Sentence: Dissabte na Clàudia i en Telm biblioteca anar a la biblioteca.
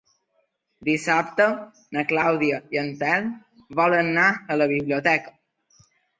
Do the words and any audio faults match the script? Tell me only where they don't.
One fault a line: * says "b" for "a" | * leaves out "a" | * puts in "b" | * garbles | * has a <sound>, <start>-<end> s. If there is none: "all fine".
* says "volen" for "biblioteca"